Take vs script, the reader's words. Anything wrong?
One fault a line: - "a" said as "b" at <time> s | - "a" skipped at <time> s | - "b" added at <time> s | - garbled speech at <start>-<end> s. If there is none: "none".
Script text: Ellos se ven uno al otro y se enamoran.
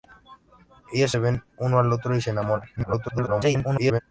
- garbled speech at 2.8-4.0 s